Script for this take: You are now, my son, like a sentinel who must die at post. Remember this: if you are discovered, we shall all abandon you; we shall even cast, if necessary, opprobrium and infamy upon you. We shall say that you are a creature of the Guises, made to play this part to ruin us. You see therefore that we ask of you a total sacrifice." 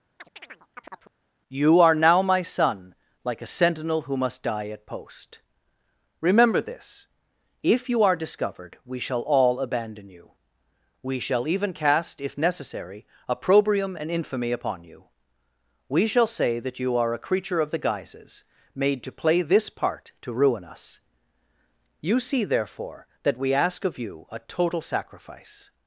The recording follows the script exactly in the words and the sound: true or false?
false